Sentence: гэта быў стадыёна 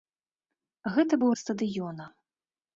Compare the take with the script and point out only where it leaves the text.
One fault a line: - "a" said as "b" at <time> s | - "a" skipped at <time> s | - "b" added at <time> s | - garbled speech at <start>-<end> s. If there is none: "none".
none